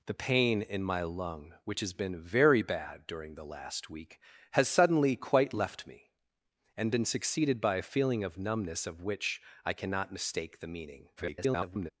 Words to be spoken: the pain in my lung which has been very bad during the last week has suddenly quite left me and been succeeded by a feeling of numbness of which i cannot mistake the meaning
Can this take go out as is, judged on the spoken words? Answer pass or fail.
fail